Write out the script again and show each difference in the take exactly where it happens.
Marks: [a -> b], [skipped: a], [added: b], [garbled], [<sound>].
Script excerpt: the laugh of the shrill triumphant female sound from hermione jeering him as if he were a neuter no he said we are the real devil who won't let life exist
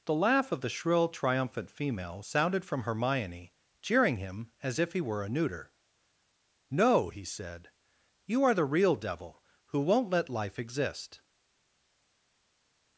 the laugh of the shrill triumphant female [sound -> sounded] from hermione jeering him as if he were a neuter no he said [we -> you] are the real devil who won't let life exist